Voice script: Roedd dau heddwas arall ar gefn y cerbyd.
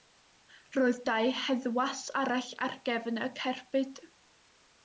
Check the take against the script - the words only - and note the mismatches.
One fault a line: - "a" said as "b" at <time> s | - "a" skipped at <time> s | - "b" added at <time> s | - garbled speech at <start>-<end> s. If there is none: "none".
none